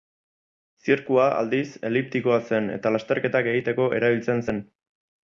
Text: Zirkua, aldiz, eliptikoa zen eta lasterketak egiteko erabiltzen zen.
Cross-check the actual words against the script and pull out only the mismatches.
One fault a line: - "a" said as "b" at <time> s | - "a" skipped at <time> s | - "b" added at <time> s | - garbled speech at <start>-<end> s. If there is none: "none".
none